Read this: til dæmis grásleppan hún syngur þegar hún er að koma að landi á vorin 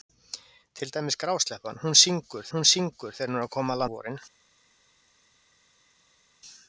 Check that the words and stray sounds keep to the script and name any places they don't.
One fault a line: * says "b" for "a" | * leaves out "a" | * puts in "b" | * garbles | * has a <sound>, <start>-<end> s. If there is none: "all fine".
* puts in "hún syngur"
* leaves out "landi"